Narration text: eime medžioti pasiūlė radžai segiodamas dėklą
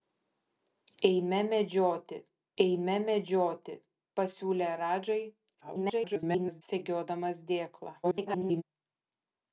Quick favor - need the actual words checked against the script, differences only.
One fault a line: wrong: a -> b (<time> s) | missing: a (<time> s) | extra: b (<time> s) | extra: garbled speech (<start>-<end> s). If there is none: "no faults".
extra: eime medžioti (2.6 s)
extra: garbled speech (5.6-6.6 s)
extra: garbled speech (8.0-8.6 s)